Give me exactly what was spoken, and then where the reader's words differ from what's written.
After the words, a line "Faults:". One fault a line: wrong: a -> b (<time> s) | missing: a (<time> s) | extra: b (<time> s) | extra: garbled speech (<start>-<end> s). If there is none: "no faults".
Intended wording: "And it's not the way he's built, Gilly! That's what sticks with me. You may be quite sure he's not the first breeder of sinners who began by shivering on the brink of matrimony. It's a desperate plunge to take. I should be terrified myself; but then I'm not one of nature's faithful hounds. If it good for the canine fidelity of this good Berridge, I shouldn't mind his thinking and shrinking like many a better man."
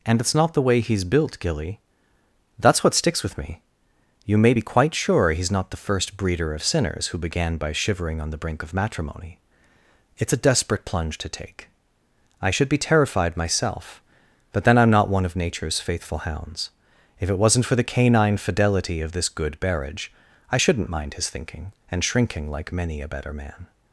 "And it's not the way he's built, Gilly! That's what sticks with me. You may be quite sure he's not the first breeder of sinners who began by shivering on the brink of matrimony. It's a desperate plunge to take. I should be terrified myself; but then I'm not one of nature's faithful hounds. If it wasn't for the canine fidelity of this good Berridge, I shouldn't mind his thinking and shrinking like many a better man."
Faults:
wrong: good -> wasn't (17.4 s)